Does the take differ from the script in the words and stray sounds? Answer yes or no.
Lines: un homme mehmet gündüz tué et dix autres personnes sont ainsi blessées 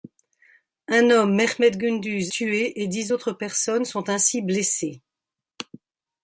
no